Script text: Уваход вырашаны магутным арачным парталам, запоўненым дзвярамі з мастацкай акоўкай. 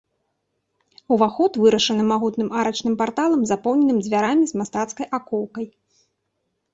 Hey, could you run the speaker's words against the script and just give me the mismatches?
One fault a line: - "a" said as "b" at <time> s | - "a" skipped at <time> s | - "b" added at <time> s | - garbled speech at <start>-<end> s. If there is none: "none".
none